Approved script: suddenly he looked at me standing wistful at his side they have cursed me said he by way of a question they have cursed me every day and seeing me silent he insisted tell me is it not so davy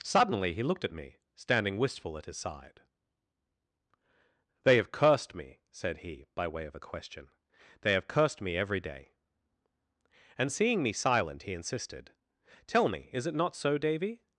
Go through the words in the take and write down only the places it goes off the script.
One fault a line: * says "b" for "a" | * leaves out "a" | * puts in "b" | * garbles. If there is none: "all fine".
all fine